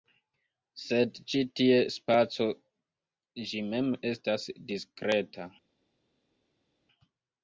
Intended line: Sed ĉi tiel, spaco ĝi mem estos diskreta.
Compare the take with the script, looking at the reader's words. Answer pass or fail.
fail